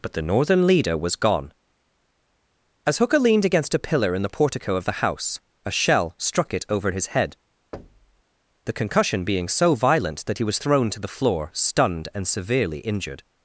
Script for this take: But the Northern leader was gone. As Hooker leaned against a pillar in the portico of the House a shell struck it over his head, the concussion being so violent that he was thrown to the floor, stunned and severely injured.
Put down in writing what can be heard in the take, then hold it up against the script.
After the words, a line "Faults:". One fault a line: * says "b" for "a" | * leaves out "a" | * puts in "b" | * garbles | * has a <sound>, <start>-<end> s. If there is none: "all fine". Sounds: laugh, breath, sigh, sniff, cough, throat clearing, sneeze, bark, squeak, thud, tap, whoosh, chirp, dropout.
But the Northern leader was gone. As Hooker leaned against a pillar in the portico of the House a shell struck it over his head, the concussion being so violent that he was thrown to the floor, stunned and severely injured.
Faults:
* has a thud, 7.7-8.2 s